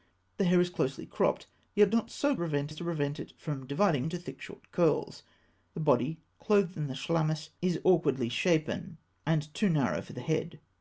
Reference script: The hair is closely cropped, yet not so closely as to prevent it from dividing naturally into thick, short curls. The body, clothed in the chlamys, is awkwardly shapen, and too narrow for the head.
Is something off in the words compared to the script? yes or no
yes